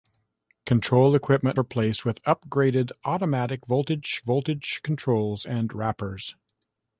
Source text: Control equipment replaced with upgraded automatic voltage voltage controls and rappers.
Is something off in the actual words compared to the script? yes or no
no